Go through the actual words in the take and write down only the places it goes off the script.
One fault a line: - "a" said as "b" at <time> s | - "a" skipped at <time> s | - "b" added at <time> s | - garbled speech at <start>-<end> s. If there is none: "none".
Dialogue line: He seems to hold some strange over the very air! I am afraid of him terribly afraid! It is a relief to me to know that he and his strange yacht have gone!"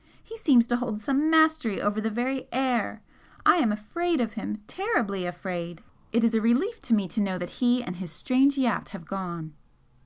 - "strange" said as "mastery" at 1.3 s